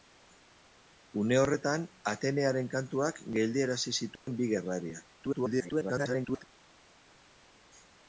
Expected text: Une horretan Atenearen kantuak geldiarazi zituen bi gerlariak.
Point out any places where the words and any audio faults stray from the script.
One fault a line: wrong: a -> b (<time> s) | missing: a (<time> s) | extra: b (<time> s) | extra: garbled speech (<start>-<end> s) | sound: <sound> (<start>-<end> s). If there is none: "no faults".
sound: dropout (4.2-4.3 s)
extra: garbled speech (5.2-6.4 s)